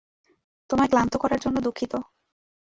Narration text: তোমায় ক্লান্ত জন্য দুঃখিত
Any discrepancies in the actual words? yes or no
yes